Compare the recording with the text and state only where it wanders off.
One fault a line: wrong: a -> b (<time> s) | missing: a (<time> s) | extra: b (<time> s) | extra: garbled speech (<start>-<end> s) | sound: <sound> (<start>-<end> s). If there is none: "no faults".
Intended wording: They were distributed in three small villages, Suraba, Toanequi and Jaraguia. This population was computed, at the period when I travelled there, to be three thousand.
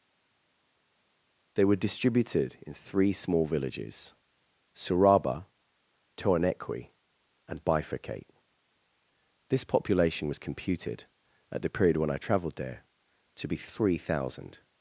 wrong: Jaraguia -> Bifurcate (7.6 s)